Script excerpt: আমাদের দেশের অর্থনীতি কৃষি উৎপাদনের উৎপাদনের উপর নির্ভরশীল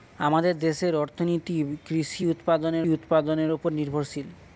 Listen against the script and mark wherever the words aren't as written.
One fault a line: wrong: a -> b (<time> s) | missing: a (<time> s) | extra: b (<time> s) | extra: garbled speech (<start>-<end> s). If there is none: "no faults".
no faults